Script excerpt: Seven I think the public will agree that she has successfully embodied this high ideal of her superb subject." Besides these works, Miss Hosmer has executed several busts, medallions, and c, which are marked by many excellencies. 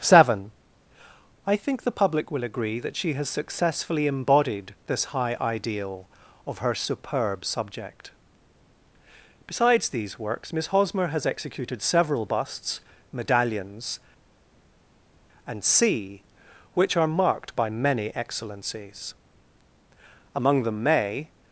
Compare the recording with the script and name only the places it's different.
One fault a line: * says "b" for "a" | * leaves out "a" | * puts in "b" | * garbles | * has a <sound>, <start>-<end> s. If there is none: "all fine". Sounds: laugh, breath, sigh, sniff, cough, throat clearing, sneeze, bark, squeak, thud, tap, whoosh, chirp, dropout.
* puts in "Among them may"